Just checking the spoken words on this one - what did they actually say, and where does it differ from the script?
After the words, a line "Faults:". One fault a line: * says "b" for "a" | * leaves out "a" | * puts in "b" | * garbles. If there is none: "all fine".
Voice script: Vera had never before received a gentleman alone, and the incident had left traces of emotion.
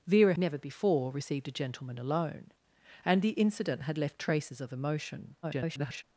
Vera never before received a gentleman alone, and the incident had left traces of emotion. [garbled]
Faults:
* leaves out "had"
* garbles